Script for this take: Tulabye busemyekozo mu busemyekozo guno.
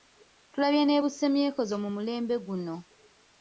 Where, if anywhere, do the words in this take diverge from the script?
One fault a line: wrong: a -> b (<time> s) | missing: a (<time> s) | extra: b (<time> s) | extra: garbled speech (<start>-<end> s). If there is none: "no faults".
extra: ne (0.8 s)
wrong: busemyekozo -> mulembe (1.9 s)